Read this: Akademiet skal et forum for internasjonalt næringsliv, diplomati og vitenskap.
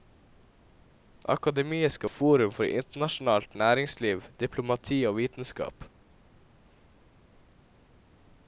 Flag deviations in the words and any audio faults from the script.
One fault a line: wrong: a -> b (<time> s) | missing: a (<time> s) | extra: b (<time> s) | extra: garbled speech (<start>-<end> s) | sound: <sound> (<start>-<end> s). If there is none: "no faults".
no faults